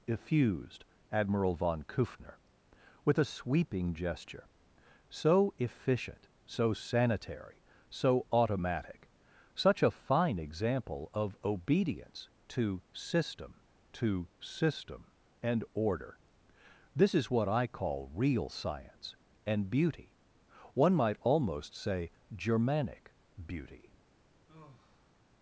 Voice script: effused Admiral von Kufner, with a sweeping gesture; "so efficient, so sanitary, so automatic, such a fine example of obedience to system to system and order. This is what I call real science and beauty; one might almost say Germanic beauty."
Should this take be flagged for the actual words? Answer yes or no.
no